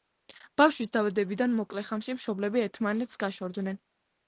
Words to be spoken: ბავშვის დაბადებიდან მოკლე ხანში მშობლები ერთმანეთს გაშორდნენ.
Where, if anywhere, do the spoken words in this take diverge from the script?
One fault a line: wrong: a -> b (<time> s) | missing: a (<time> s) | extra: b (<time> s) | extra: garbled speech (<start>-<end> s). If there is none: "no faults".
no faults